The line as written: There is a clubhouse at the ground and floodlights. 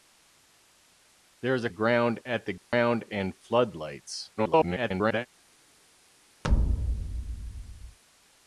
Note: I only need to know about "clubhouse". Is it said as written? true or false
false